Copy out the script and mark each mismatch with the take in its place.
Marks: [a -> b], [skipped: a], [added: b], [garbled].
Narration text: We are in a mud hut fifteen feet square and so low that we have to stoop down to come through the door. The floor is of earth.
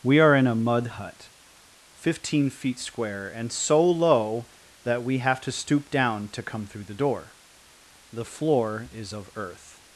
We are in a mud hut fifteen feet square and so low that we have to stoop down to come through the door. The floor is of earth.